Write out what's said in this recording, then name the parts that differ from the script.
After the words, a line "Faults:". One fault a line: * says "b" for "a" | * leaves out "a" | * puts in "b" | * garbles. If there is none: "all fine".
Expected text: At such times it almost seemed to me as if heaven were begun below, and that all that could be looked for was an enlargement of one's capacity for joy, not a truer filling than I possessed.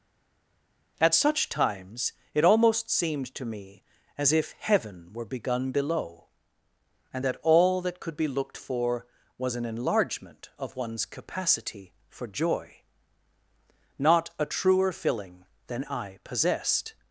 At such times it almost seemed to me as if heaven were begun below, and that all that could be looked for was an enlargement of one's capacity for joy, not a truer filling than I possessed.
Faults:
all fine